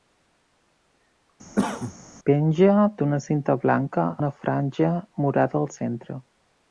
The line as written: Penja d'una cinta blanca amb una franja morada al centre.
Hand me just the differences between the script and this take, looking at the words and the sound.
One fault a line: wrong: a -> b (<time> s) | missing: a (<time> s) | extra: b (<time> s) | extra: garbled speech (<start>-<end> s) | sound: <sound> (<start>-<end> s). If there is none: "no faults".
sound: cough (1.5-1.9 s)
missing: amb (4.1 s)